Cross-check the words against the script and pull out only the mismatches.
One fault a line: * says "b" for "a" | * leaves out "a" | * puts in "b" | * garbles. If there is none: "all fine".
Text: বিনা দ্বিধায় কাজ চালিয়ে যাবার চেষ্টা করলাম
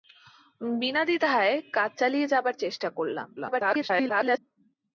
* garbles